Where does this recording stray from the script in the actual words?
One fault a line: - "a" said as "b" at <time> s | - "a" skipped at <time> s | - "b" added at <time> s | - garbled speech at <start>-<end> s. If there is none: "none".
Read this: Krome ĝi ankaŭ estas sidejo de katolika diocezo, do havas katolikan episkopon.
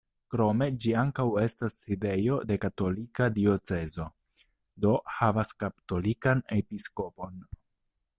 none